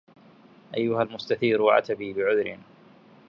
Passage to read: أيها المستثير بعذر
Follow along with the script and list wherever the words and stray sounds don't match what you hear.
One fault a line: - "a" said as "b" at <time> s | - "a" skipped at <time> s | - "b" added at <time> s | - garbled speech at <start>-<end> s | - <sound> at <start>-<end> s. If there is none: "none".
- "عتبي" added at 1.7 s